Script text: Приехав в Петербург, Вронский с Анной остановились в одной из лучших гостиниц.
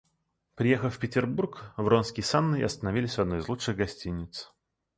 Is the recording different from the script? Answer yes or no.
no